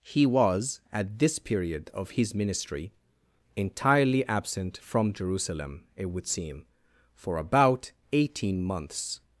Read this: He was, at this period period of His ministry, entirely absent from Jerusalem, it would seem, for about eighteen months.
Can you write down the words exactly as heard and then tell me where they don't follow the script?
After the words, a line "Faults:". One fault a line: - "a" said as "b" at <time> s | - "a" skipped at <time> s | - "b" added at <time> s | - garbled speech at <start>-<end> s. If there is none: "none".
He was, at this period of His ministry, entirely absent from Jerusalem, it would seem, for about eighteen months.
Faults:
- "period" skipped at 1.9 s